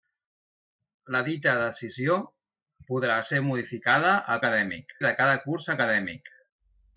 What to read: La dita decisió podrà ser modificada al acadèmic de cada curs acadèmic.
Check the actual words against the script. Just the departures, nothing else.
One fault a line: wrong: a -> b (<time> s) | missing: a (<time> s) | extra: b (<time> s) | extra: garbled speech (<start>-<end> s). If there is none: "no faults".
no faults